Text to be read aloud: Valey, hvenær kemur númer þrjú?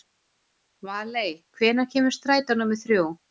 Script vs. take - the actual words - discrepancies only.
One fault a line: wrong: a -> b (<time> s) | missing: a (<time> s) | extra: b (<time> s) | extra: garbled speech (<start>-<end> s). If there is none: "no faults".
extra: strætó (2.2 s)